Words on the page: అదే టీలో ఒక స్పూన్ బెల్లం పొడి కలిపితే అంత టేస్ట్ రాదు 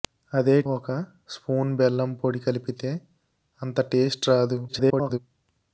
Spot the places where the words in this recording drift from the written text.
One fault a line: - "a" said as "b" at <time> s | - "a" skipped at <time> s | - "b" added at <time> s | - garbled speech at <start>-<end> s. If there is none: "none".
- "టీలో" skipped at 0.6 s
- garbled speech at 4.7-5.2 s